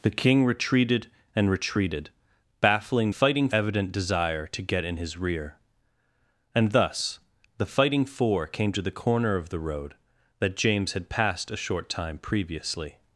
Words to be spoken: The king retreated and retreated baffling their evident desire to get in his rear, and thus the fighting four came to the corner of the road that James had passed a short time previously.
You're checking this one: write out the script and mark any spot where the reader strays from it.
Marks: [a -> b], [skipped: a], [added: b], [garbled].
The king retreated and retreated baffling [their -> fighting] evident desire to get in his rear, and thus the fighting four came to the corner of the road that James had passed a short time previously.